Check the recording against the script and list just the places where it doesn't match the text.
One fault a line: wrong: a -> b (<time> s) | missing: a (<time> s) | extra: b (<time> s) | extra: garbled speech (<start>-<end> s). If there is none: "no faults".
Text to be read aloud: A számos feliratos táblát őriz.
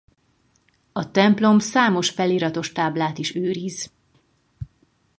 extra: templom (1.1 s)
extra: is (3.2 s)